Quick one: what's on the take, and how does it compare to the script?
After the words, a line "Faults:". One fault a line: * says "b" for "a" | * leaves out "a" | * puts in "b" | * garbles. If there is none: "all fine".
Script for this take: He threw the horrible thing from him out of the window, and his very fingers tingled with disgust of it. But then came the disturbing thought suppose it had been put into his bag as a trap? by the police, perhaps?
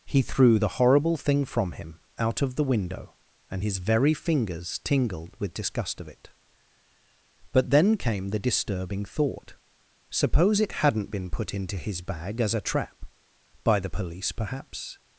He threw the horrible thing from him out of the window, and his very fingers tingled with disgust of it. But then came the disturbing thought suppose it hadn't been put into his bag as a trap? by the police, perhaps?
Faults:
* says "hadn't" for "had"